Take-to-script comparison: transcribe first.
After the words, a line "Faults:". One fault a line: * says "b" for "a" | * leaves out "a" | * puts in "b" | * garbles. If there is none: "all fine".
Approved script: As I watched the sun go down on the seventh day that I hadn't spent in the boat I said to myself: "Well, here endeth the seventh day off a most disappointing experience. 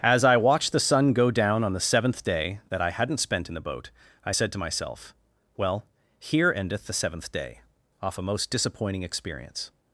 As I watched the sun go down on the seventh day that I hadn't spent in the boat I said to myself: "Well, here endeth the seventh day off a most disappointing experience.
Faults:
all fine